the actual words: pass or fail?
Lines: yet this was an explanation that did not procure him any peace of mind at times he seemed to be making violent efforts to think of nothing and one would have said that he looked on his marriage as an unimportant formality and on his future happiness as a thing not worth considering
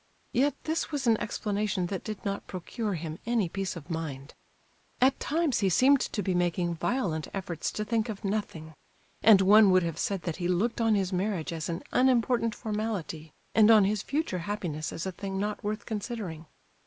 pass